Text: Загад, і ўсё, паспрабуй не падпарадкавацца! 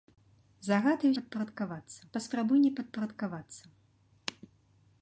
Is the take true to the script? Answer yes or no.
no